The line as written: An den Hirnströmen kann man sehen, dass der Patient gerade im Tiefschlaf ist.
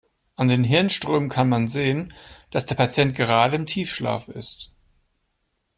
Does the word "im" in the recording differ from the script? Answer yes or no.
no